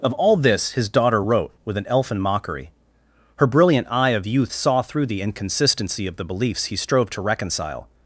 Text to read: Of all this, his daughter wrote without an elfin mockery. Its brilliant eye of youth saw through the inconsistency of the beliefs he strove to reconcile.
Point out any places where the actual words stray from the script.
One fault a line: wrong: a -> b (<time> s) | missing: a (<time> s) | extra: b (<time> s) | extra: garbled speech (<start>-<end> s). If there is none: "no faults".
wrong: without -> with (1.6 s)
wrong: Its -> Her (3.4 s)